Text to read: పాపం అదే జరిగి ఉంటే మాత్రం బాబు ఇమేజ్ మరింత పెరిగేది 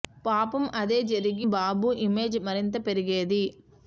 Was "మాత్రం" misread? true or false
true